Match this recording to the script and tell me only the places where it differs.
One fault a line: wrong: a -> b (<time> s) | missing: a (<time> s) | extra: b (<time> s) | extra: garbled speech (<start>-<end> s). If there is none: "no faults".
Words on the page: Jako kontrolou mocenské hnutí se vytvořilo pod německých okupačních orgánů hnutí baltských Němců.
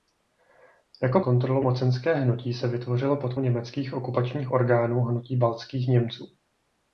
no faults